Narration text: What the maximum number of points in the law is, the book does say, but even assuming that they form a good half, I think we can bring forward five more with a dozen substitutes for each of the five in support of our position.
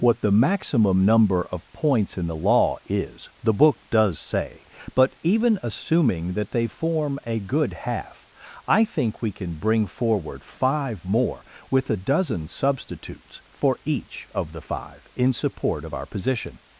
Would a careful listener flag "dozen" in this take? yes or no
no